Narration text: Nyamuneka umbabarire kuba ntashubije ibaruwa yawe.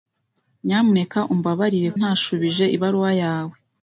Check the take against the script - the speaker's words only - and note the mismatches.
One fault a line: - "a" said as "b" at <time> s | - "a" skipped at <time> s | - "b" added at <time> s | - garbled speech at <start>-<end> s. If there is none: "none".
- "kuba" skipped at 1.9 s